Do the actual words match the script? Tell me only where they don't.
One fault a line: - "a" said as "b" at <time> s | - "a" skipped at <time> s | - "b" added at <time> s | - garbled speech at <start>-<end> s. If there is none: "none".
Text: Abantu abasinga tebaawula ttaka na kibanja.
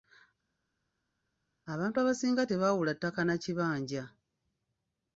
none